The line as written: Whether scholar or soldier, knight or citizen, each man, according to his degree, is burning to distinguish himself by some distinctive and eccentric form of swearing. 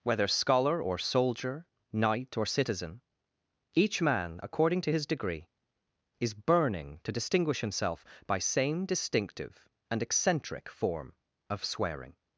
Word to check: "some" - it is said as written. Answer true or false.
false